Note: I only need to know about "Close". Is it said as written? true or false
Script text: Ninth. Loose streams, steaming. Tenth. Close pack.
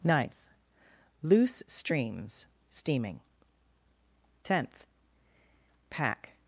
false